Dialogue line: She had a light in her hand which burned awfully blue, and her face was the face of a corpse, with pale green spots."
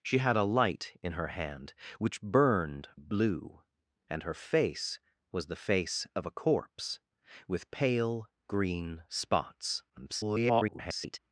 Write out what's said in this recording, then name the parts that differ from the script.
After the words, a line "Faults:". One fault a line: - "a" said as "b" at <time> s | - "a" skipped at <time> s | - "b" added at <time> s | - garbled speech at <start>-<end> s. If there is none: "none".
She had a light in her hand which burned blue, and her face was the face of a corpse, with pale green spots." [garbled]
Faults:
- "awfully" skipped at 2.9 s
- garbled speech at 9.9-11.2 s